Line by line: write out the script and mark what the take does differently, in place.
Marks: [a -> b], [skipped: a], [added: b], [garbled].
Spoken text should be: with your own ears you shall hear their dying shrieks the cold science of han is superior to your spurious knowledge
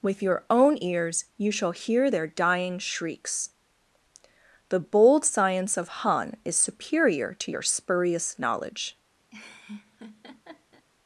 with your own ears you shall hear their dying shrieks the [cold -> bold] science of han is superior to your spurious knowledge